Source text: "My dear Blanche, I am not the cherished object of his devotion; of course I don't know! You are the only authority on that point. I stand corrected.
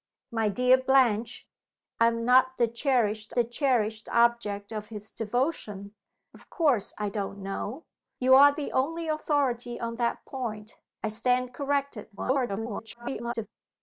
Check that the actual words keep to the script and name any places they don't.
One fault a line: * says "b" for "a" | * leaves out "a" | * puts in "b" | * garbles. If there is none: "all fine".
* puts in "the cherished"
* garbles